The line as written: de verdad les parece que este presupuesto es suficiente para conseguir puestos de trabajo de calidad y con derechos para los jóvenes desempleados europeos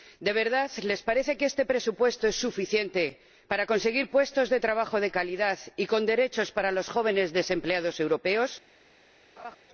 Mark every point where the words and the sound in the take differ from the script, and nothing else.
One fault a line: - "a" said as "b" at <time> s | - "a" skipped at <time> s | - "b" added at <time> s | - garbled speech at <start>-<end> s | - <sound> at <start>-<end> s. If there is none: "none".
- laugh at 9.4-9.6 s